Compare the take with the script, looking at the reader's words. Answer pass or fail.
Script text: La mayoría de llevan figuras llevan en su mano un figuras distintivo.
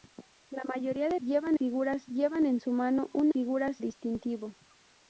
pass